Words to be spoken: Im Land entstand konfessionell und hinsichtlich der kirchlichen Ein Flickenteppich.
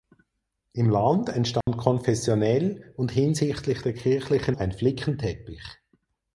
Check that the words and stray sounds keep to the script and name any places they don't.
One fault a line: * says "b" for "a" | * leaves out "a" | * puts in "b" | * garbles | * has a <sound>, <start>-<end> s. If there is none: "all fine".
* has a dropout, 1.6-1.7 s